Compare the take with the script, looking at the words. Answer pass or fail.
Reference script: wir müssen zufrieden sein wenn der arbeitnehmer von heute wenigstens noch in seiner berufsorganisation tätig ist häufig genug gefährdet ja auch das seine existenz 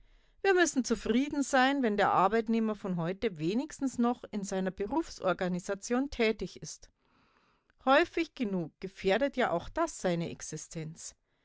pass